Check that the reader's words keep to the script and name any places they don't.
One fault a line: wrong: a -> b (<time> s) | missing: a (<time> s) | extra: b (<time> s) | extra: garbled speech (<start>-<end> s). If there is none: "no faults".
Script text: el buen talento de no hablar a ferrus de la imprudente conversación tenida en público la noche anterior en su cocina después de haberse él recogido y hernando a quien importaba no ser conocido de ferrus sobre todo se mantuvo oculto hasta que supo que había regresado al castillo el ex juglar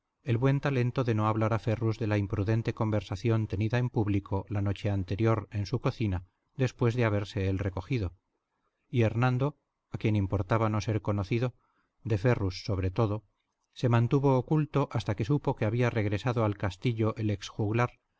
no faults